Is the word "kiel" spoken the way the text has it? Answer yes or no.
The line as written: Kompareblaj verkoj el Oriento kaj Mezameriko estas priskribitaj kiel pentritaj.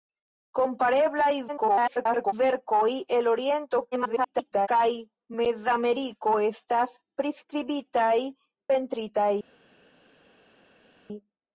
no